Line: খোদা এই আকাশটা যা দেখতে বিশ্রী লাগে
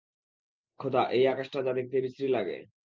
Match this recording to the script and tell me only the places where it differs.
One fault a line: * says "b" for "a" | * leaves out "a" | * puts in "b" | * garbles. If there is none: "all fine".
all fine